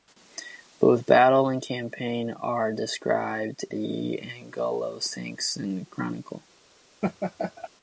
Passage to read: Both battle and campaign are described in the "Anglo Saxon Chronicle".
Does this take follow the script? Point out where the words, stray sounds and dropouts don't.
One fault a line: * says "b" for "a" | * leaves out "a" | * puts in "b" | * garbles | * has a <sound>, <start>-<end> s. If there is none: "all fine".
* leaves out "in"
* has a laugh, 7.0-7.7 s